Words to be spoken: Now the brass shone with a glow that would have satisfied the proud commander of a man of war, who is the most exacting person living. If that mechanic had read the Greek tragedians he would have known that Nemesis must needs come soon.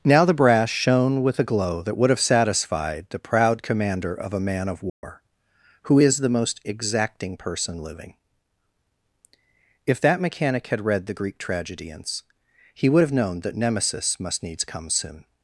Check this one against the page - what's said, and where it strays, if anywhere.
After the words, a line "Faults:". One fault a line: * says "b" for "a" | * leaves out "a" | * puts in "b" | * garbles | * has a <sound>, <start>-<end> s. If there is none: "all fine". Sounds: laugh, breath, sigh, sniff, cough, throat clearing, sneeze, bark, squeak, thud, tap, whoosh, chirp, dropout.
Now the brass shone with a glow that would have satisfied the proud commander of a man of war, who is the most exacting person living. If that mechanic had read the Greek tragedians he would have known that Nemesis must needs come soon.
Faults:
* has a dropout, 4.9-5.0 s